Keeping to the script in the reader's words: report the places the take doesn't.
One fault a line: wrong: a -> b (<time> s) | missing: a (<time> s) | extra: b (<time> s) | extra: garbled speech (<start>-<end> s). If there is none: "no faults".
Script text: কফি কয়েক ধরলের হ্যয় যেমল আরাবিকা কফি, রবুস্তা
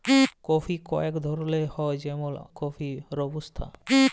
missing: আরাবিকা (2.3 s)